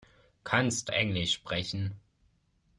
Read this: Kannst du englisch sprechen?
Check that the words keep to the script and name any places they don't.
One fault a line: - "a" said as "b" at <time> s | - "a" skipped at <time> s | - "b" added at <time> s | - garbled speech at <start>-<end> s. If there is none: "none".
- "du" skipped at 0.9 s